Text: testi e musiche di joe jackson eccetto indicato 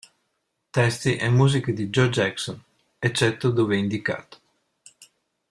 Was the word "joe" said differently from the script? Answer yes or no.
no